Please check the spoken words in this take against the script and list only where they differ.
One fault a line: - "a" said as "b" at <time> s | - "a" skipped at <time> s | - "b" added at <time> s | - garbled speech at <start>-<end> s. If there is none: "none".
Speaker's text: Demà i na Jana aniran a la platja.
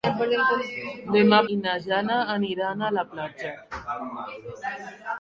none